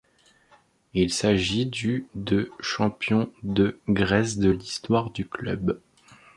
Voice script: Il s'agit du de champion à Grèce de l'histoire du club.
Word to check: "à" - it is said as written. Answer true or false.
false